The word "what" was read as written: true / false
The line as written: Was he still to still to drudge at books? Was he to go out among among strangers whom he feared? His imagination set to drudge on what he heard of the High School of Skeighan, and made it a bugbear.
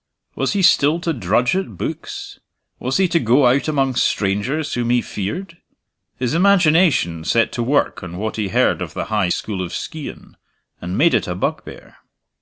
true